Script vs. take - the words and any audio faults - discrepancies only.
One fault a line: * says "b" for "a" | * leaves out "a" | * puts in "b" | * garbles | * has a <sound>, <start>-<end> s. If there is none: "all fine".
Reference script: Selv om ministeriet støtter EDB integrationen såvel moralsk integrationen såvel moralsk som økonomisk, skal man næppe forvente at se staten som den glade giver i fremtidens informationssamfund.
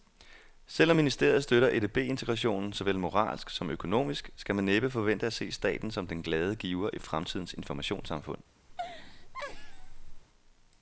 * leaves out "integrationen såvel moralsk"
* has a laugh, 8.7-10.2 s